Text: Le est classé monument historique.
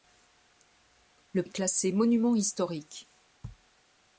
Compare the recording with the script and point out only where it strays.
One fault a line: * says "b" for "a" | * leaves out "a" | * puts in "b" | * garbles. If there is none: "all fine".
all fine